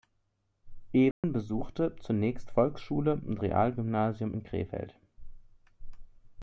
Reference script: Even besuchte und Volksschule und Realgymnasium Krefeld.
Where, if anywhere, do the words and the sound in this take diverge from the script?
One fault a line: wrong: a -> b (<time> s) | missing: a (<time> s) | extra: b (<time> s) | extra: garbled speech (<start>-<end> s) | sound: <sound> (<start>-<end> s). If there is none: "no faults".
sound: dropout (1.1-1.2 s)
wrong: und -> zunächst (2.0 s)
extra: in (4.3 s)